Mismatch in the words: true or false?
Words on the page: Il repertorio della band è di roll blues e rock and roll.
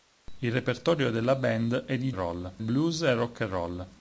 false